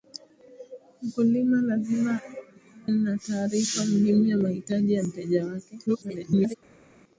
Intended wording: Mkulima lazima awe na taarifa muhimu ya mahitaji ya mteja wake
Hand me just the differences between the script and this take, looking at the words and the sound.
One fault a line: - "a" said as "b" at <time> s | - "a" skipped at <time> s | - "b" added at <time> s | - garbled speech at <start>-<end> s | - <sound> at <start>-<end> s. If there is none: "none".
- "awe" skipped at 2.2 s
- garbled speech at 5.9-6.6 s